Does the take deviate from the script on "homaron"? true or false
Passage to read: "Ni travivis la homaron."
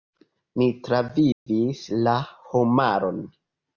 false